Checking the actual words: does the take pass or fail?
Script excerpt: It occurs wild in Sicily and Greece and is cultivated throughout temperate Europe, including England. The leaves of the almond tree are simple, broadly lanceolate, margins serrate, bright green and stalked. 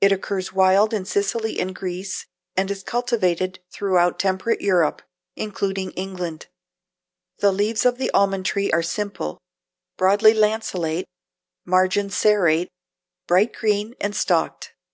pass